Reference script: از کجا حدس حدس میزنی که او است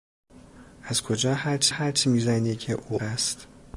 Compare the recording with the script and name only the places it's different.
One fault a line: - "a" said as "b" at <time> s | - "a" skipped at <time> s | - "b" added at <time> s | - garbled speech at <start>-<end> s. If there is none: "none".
none